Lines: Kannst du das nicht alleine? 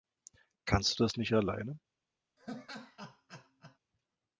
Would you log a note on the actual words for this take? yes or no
no